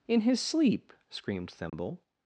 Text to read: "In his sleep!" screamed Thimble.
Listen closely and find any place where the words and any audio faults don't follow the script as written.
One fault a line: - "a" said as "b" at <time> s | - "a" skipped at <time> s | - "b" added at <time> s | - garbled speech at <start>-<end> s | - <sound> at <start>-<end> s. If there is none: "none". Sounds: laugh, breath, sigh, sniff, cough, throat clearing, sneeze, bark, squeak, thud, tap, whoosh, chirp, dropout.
- dropout at 1.7-1.7 s